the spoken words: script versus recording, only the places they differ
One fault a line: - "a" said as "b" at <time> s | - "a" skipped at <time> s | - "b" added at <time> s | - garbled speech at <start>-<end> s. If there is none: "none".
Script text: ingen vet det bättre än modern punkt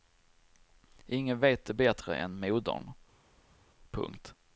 none